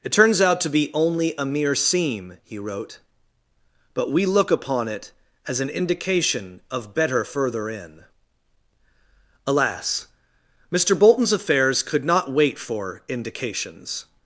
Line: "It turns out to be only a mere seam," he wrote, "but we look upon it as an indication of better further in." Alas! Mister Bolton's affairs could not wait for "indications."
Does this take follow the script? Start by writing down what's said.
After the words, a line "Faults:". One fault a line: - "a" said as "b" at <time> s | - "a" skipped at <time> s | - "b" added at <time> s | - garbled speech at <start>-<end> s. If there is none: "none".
"It turns out to be only a mere seam," he wrote, "but we look upon it as an indication of better further in." Alas! Mister Bolton's affairs could not wait for "indications."
Faults:
none